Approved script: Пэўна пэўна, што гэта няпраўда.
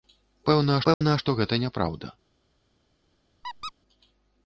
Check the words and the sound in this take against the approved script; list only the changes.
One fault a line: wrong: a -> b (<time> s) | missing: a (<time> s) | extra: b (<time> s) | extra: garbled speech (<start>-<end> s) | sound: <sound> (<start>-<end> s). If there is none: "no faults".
sound: dropout (0.9-1.0 s)
sound: squeak (3.4-3.7 s)